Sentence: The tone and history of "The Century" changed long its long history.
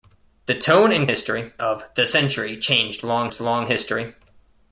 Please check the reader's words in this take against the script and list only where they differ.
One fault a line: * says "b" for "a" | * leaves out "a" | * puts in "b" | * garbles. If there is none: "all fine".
all fine